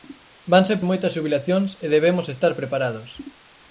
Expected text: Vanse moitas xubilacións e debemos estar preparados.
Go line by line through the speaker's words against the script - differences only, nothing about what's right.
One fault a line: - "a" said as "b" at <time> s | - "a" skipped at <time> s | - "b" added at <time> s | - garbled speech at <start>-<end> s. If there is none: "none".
none